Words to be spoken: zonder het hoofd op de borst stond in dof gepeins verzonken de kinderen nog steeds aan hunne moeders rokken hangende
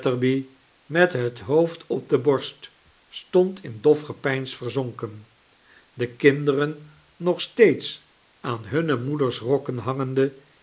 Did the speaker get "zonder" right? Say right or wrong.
wrong